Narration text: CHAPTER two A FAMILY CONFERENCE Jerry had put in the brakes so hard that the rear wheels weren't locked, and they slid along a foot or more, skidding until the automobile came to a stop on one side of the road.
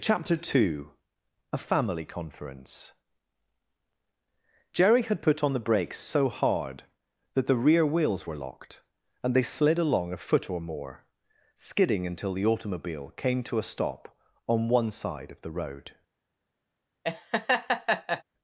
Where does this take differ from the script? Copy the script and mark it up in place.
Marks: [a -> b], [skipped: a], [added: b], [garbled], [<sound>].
CHAPTER two A FAMILY CONFERENCE Jerry had put [in -> on] the brakes so hard that the rear wheels [weren't -> were] locked, and they slid along a foot or more, skidding until the automobile came to a stop on one side of the road. [laugh]